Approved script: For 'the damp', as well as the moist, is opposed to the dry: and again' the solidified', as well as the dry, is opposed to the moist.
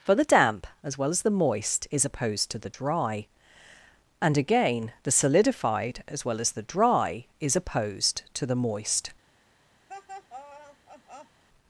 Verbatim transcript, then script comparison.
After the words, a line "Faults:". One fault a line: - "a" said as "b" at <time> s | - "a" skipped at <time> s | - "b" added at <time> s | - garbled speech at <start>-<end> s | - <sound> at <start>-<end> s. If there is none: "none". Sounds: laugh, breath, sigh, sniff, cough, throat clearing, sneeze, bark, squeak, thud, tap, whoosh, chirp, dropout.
For 'the damp', as well as the moist, is opposed to the dry: and again' the solidified', as well as the dry, is opposed to the moist.
Faults:
- laugh at 9.9-11.4 s